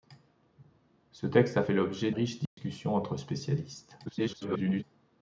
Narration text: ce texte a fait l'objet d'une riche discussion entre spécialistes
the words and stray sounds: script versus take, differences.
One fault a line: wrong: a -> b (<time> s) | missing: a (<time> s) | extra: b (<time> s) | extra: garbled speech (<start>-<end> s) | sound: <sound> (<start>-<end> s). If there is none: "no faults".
missing: d'une (2.1 s)
sound: dropout (2.5-2.6 s)
extra: garbled speech (4.1-4.8 s)